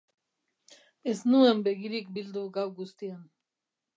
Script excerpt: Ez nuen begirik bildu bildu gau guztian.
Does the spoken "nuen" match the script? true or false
true